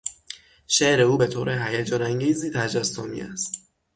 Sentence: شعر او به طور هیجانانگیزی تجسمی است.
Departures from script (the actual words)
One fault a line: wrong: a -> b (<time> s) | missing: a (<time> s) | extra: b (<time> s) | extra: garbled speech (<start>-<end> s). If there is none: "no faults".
no faults